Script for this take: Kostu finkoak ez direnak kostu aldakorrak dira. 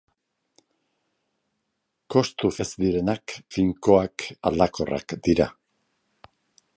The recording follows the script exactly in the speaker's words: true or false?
false